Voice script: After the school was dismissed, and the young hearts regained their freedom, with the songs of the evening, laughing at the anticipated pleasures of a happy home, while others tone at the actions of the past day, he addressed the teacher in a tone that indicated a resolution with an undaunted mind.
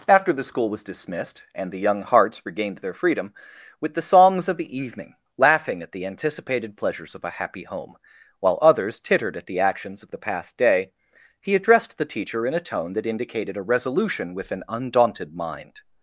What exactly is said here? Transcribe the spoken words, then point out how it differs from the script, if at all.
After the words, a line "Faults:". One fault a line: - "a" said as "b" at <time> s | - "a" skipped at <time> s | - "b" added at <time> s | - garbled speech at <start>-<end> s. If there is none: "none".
After the school was dismissed, and the young hearts regained their freedom, with the songs of the evening, laughing at the anticipated pleasures of a happy home, while others tittered at the actions of the past day, he addressed the teacher in a tone that indicated a resolution with an undaunted mind.
Faults:
- "tone" said as "tittered" at 9.0 s